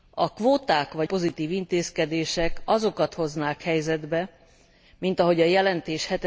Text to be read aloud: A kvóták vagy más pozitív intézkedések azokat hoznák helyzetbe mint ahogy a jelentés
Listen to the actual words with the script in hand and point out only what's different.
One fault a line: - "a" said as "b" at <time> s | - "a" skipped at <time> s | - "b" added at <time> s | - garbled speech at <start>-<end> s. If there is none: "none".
- "más" skipped at 1.1 s